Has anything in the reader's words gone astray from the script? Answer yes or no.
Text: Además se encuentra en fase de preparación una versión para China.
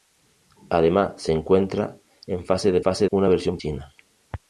yes